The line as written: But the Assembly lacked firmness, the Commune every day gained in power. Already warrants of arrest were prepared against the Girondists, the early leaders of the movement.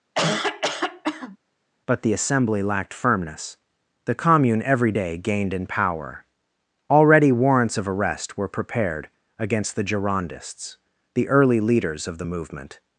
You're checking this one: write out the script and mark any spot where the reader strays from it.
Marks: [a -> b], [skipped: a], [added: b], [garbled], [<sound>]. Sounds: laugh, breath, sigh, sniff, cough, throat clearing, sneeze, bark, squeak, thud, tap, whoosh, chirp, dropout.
[cough] But the Assembly lacked firmness, the Commune every day gained in power. Already warrants of arrest were prepared against the Girondists, the early leaders of the movement.